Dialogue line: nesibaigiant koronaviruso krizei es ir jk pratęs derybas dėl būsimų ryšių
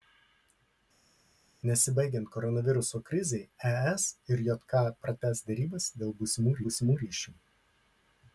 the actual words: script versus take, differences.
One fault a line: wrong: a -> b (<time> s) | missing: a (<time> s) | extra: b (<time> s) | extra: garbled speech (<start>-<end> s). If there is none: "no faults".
extra: būsimų (6.7 s)